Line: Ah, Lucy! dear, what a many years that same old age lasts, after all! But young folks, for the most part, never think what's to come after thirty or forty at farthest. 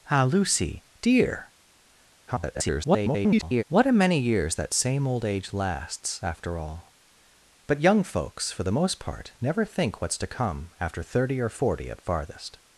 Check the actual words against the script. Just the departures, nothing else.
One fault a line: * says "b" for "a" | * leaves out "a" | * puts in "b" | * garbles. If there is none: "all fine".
* garbles